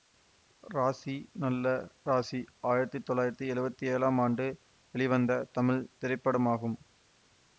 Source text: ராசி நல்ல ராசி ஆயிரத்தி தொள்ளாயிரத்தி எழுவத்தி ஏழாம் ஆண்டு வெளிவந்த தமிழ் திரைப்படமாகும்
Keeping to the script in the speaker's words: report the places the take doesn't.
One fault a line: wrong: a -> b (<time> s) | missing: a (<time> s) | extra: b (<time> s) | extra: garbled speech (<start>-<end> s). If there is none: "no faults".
no faults